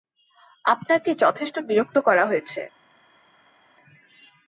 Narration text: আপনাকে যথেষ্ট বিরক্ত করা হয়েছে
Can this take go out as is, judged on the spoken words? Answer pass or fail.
pass